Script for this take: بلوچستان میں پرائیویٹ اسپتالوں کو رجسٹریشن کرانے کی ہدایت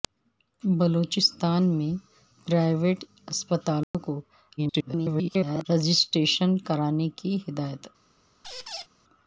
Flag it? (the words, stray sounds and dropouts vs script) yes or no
yes